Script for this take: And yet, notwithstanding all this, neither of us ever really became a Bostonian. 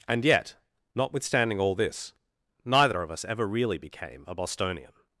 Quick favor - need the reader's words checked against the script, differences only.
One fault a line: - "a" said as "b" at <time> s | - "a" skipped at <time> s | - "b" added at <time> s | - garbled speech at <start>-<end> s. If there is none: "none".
none